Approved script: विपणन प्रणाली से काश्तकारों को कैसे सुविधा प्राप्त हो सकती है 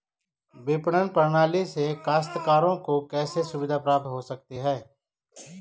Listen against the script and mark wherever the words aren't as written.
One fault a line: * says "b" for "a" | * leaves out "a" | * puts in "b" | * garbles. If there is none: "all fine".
all fine